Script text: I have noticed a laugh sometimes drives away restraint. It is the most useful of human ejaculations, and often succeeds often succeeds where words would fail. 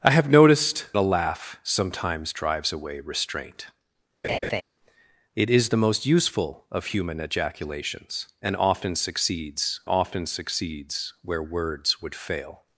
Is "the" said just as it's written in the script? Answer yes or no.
yes